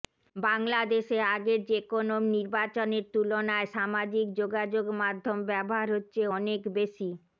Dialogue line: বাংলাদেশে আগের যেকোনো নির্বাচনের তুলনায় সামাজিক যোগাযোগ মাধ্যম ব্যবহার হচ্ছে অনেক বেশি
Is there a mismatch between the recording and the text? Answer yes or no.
no